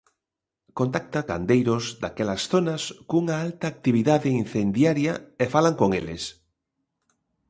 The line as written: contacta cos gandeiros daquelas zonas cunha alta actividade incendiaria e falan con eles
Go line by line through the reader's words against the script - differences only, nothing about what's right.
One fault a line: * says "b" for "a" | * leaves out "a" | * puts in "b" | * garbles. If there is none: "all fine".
* leaves out "cos"